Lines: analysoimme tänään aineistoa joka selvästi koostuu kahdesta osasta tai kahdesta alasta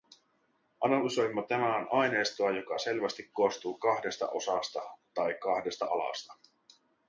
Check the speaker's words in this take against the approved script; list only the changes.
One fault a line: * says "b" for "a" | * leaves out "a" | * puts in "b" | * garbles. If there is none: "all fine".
all fine